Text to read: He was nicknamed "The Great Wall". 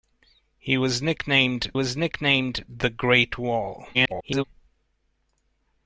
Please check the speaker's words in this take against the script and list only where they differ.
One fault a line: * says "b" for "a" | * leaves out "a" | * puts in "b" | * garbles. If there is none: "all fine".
* puts in "was nicknamed"
* garbles